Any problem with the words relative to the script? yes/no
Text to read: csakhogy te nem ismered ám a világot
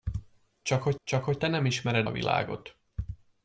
yes